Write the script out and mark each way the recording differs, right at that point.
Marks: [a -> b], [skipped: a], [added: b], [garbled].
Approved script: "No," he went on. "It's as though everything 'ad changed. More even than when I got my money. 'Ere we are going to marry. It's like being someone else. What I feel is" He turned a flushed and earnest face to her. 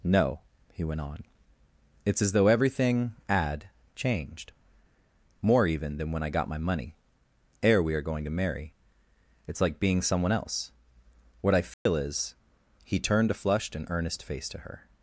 "No," he went on. "It's as though everything 'ad changed. More even than when I got my money. 'Ere we are going to marry. It's like being someone else. What I feel is" He turned a flushed and earnest face to her.